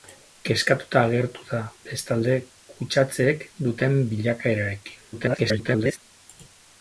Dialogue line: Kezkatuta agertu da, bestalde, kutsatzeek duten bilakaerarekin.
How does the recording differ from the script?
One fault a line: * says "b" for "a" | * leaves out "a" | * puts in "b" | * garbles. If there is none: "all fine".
* garbles